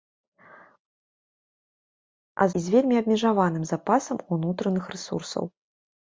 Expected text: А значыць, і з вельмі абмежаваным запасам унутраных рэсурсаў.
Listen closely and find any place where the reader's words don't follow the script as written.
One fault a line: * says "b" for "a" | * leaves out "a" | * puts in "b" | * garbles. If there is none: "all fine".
* leaves out "значыць"